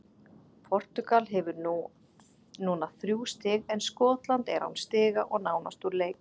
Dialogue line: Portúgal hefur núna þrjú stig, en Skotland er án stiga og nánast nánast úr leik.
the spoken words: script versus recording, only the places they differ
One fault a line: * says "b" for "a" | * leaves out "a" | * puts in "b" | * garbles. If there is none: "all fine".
* leaves out "nánast"